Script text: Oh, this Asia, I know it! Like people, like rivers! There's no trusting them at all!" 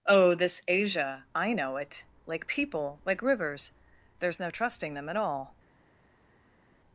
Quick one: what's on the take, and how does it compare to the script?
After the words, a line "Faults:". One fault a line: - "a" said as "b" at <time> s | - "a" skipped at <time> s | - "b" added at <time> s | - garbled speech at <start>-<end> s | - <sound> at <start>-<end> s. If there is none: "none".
Oh, this Asia, I know it! Like people, like rivers! There's no trusting them at all!"
Faults:
none